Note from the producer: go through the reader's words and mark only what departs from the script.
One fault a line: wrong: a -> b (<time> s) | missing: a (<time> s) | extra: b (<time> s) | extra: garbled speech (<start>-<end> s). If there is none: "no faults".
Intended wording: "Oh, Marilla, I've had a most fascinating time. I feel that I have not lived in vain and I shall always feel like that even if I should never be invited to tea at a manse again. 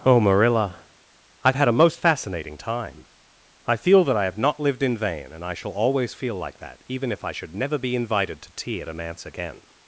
no faults